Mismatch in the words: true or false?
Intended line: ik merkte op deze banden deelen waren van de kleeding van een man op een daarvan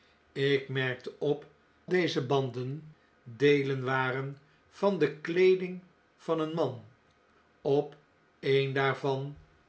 false